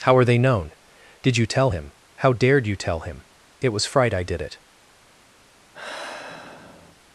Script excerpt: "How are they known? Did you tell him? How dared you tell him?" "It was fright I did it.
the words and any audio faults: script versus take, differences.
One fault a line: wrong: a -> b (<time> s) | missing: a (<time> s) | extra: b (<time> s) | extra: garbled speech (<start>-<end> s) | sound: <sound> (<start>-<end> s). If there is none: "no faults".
sound: sigh (5.7-7.0 s)